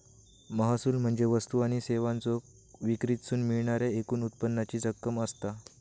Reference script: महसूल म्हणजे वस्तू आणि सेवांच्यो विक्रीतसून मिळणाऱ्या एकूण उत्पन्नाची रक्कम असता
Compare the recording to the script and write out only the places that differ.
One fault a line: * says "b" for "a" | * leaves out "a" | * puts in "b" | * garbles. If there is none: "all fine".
all fine